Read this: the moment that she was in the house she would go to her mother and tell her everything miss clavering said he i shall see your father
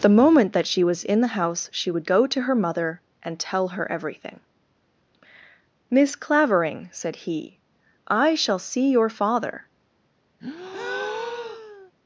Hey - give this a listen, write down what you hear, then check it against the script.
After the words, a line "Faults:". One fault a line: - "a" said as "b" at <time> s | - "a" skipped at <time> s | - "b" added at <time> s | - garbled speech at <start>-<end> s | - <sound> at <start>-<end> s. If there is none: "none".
the moment that she was in the house she would go to her mother and tell her everything miss clavering said he i shall see your father
Faults:
- breath at 10.4-11.9 s